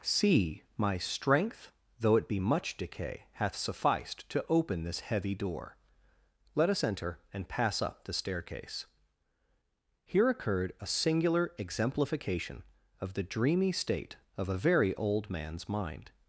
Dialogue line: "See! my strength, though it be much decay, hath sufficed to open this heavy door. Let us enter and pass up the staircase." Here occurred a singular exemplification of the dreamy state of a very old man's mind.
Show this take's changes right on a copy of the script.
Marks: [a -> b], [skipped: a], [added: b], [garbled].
"See! my strength, though it be much decay, hath sufficed to open this heavy door. Let us enter and pass up the staircase." Here occurred a singular exemplification of the dreamy state of a very old man's mind.